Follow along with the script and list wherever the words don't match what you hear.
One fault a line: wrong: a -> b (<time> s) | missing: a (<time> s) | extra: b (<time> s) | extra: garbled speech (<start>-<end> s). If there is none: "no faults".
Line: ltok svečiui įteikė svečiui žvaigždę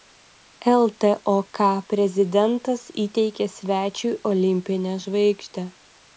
wrong: svečiui -> prezidentas (1.9 s)
extra: olimpinę (4.3 s)